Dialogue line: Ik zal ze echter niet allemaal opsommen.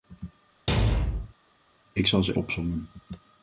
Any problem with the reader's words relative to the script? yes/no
yes